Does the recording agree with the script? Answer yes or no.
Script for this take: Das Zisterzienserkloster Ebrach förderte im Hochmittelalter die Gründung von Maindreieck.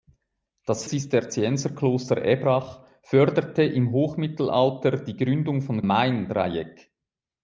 yes